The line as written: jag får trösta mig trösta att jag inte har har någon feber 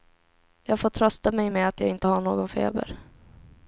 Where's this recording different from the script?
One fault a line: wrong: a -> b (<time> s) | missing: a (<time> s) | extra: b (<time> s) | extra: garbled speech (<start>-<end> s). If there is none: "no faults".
wrong: trösta -> med (1.5 s)
missing: har (2.2 s)